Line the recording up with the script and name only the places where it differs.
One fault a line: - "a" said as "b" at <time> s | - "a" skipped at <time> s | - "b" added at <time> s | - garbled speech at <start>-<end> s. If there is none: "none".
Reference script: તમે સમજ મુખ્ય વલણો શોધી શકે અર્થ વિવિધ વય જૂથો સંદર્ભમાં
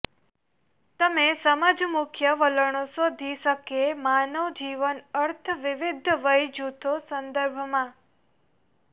- "માનવ જીવન" added at 4.0 s